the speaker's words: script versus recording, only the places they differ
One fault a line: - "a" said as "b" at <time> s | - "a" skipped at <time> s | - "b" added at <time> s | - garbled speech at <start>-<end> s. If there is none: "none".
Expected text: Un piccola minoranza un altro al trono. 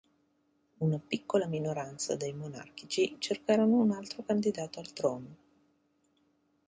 - "Un" said as "Una" at 0.8 s
- "dei monarchici cercarono" added at 2.1 s
- "candidato" added at 4.2 s